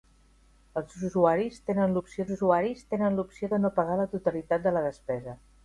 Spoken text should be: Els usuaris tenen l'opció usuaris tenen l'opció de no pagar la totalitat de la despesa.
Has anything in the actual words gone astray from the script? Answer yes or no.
no